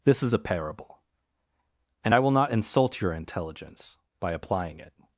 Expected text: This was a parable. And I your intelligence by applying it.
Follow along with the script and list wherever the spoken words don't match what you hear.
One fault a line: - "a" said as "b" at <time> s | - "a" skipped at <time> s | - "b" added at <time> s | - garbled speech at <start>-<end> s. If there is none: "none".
- "was" said as "is" at 0.2 s
- "will not insult" added at 2.2 s